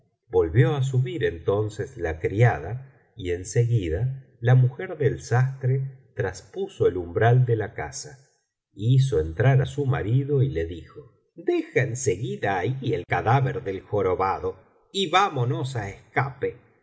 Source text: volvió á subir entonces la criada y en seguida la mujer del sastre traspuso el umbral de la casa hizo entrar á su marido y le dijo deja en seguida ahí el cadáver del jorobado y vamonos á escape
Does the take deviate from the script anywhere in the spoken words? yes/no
no